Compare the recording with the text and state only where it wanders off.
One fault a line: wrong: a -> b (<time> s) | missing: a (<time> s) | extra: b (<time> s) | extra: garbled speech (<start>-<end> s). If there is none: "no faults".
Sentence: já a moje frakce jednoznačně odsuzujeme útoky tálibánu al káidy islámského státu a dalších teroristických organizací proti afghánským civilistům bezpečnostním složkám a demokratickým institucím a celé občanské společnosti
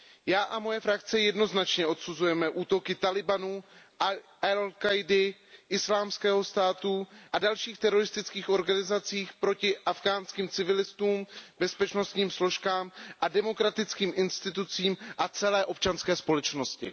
no faults